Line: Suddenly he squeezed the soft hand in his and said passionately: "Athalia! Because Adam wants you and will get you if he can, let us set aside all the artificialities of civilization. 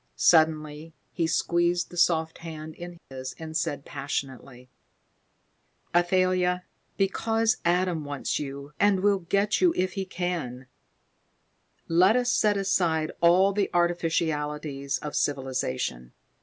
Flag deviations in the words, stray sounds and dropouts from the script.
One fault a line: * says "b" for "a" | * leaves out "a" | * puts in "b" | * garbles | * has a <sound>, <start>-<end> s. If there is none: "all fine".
* has a dropout, 3.0-3.1 s